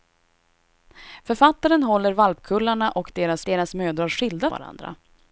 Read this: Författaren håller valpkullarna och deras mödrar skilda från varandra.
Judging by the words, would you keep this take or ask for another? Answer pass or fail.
fail